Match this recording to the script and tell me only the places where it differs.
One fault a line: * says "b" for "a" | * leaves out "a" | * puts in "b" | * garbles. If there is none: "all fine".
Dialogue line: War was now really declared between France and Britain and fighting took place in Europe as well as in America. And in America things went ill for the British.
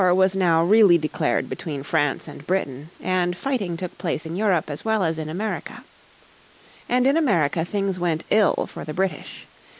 all fine